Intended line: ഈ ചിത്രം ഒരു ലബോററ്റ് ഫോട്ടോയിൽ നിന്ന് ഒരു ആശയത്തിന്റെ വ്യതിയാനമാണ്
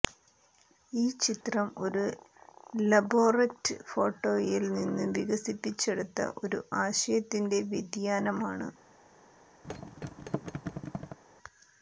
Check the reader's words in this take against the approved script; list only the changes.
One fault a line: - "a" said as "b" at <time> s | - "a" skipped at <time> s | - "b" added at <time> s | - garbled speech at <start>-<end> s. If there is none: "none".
- "വികസിപ്പിച്ചെടുത്ത" added at 5.2 s